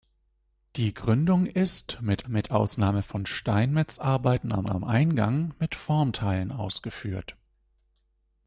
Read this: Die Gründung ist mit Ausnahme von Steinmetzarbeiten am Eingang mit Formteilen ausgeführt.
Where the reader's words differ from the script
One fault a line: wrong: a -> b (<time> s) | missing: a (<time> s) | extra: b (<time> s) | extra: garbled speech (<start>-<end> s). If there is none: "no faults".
extra: mit (2.3 s)
extra: am (4.7 s)